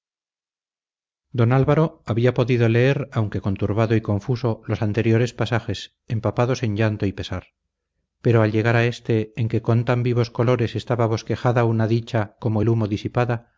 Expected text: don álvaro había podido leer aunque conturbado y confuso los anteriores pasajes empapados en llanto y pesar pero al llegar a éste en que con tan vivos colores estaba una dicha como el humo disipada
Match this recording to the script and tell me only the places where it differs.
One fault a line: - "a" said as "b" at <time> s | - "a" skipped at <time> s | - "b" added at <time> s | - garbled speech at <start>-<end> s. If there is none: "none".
- "bosquejada" added at 11.1 s